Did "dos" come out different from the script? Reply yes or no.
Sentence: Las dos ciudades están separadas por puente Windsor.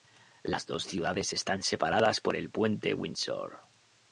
no